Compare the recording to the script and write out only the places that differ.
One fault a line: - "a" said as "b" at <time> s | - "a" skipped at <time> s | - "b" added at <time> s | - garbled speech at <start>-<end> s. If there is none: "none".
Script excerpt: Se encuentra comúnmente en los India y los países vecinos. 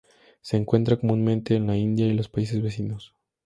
- "los" said as "la" at 1.7 s